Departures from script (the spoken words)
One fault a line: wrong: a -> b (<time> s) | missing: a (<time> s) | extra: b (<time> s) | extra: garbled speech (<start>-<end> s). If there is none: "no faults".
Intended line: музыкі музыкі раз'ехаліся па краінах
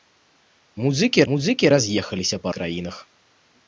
no faults